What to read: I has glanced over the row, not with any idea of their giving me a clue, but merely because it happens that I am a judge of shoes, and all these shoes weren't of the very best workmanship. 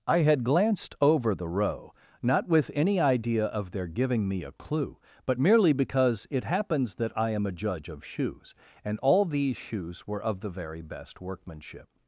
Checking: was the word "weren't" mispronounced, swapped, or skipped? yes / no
yes